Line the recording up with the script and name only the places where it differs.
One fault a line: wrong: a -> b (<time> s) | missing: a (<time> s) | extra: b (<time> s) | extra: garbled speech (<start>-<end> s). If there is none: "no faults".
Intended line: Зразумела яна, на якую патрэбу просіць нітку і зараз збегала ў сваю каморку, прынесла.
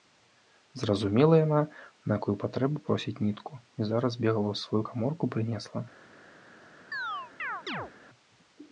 no faults